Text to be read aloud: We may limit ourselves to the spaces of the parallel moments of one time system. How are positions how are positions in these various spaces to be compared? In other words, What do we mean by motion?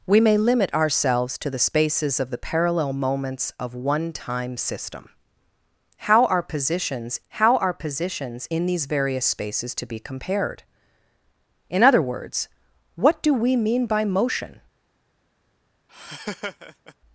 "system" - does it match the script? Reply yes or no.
yes